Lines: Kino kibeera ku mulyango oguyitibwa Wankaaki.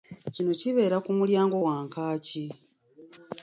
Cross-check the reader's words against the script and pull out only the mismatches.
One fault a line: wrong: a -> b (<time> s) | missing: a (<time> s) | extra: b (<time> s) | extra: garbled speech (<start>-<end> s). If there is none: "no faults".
missing: oguyitibwa (1.6 s)